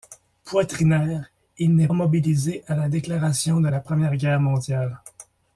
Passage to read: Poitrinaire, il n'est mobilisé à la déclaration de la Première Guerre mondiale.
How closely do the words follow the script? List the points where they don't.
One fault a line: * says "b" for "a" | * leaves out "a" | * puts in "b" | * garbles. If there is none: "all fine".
all fine